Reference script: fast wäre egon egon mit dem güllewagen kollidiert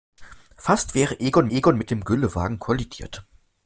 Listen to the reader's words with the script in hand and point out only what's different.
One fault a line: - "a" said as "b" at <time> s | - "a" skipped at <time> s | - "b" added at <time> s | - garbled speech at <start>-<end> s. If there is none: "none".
none